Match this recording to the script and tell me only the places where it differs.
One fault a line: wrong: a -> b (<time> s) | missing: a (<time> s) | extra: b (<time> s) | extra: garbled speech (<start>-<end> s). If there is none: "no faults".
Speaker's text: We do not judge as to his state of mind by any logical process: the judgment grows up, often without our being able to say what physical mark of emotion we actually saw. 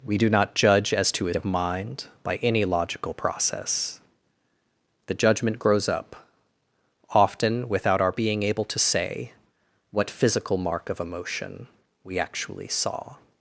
missing: state (1.4 s)